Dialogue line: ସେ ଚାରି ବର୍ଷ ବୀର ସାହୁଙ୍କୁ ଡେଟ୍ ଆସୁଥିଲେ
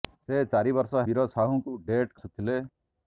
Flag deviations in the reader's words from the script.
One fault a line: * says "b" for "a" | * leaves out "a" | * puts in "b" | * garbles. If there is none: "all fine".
all fine